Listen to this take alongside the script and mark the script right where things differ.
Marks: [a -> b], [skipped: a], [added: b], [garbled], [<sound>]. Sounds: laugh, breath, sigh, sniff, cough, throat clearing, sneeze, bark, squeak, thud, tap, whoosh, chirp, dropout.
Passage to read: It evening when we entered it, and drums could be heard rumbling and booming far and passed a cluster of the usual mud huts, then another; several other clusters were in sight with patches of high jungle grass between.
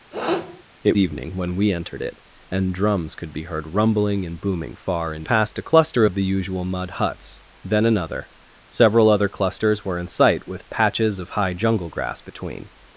[sniff] It evening when we entered it, and drums could be heard rumbling and booming far and passed a cluster of the usual mud huts, then another; several other clusters were in sight with patches of high jungle grass between.